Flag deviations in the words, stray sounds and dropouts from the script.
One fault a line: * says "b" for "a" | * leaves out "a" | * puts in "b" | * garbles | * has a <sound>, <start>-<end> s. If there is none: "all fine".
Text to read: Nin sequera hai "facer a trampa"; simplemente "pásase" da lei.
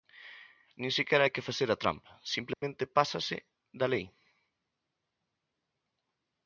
* puts in "que"
* has a dropout, 2.5-2.6 s